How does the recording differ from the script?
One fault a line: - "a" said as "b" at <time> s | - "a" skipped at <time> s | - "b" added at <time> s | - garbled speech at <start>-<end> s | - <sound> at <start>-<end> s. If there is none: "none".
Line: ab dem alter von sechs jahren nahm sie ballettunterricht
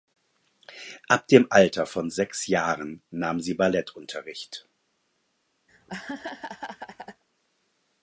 - laugh at 5.7-7.2 s